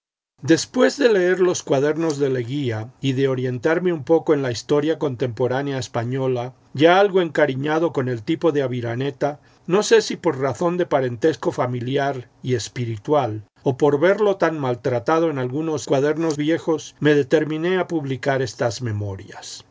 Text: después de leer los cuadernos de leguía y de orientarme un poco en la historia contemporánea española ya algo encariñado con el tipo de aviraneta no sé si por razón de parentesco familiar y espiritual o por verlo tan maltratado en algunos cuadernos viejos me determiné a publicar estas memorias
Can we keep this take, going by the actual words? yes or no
yes